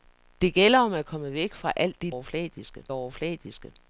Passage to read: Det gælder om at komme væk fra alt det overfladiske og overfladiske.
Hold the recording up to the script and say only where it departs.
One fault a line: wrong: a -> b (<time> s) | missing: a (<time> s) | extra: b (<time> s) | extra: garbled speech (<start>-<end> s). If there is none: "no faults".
no faults